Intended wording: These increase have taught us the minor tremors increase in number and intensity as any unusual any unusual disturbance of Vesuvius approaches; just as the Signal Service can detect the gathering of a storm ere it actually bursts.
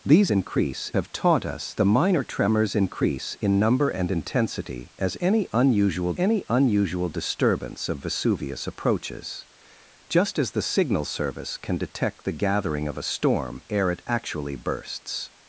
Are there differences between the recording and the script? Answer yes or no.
no